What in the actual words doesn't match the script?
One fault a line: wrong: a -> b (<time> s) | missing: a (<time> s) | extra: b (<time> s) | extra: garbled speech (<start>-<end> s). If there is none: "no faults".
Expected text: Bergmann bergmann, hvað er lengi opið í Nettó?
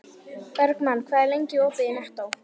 missing: bergmann (1.0 s)